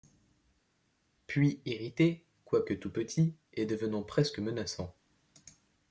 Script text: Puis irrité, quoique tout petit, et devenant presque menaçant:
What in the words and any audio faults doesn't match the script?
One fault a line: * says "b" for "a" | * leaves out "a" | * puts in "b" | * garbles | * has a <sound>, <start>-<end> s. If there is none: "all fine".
all fine